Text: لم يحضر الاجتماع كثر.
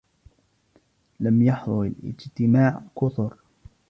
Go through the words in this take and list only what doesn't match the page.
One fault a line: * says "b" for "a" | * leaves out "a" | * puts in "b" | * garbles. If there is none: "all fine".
all fine